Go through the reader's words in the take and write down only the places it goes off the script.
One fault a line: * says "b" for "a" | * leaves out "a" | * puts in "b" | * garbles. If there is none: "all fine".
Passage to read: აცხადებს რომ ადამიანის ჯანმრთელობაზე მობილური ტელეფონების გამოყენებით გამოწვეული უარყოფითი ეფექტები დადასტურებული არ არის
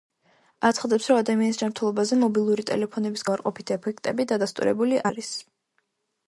* leaves out "გამოყენებით გამოწვეული"
* leaves out "არ"